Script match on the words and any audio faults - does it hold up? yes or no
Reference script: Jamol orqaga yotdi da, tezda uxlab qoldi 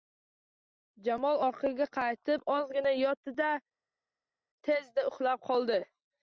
no